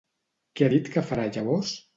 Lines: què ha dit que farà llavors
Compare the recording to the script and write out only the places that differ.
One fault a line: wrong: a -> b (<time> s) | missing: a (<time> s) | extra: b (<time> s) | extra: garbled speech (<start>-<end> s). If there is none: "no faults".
no faults